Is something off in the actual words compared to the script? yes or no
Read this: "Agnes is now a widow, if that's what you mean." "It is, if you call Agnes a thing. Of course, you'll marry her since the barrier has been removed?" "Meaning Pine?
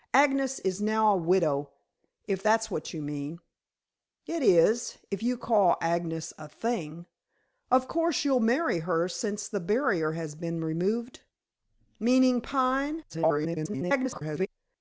yes